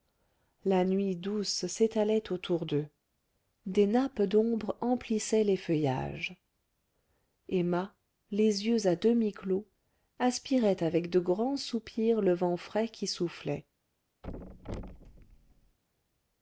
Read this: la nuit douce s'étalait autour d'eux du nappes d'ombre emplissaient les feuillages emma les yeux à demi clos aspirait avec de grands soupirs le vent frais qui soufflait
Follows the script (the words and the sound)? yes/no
no